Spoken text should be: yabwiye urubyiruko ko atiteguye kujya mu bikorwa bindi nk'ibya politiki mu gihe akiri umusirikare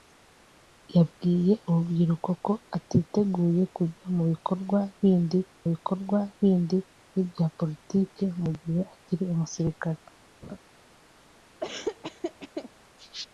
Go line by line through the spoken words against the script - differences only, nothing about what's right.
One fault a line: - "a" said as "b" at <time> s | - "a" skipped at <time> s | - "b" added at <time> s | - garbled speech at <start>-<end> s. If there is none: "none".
- "bikorwa bindi" added at 5.7 s